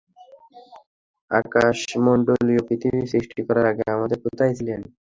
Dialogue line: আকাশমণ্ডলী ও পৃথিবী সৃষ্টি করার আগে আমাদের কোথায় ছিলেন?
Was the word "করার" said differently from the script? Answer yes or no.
no